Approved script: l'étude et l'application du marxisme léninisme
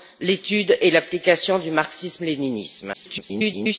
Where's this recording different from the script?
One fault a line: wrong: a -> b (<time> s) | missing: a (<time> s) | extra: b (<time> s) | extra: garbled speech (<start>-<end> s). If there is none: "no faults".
extra: garbled speech (2.9-3.8 s)